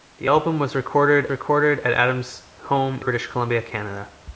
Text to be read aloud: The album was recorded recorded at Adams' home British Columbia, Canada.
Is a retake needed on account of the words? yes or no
no